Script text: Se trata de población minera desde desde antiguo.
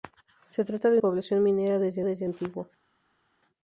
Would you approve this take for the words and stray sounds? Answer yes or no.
yes